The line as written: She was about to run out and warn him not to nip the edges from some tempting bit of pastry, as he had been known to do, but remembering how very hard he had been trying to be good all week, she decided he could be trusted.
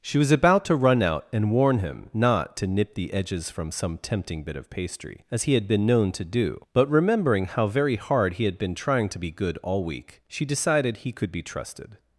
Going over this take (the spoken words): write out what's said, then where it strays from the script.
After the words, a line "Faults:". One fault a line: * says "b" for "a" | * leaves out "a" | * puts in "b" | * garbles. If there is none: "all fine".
She was about to run out and warn him not to nip the edges from some tempting bit of pastry, as he had been known to do, but remembering how very hard he had been trying to be good all week, she decided he could be trusted.
Faults:
all fine